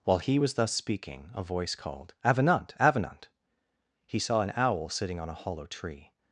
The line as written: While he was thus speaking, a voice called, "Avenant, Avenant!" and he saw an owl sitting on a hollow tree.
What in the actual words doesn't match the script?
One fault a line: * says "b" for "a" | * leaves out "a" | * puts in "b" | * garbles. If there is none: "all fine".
* leaves out "and"